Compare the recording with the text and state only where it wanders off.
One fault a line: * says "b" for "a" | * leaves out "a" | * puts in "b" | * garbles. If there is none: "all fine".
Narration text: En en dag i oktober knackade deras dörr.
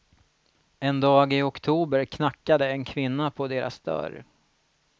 * leaves out "en"
* puts in "en kvinna på"